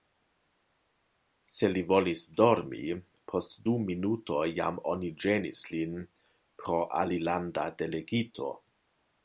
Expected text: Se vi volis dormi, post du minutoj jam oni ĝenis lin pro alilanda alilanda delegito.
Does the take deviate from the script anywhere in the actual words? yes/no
yes